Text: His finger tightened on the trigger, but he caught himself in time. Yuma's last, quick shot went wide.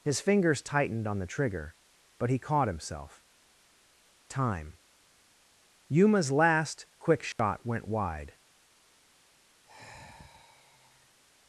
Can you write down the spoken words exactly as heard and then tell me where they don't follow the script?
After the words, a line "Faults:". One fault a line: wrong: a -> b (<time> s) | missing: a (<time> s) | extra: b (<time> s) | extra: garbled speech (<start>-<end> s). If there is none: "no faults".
His fingers tightened on the trigger, but he caught himself time. Yuma's last, quick shot went wide.
Faults:
wrong: finger -> fingers (0.2 s)
missing: in (3.2 s)